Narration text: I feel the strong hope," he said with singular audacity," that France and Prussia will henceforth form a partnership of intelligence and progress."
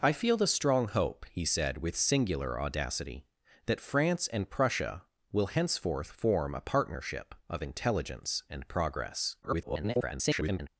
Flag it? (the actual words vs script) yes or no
yes